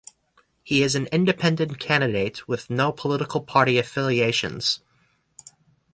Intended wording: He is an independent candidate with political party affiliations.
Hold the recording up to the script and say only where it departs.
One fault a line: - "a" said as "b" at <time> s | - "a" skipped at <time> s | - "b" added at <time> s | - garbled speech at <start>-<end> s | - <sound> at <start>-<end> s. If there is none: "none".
- "no" added at 2.7 s